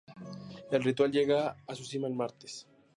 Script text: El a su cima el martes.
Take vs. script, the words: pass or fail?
fail